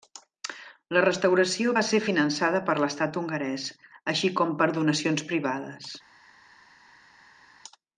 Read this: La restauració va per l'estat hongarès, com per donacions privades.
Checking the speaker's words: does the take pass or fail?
fail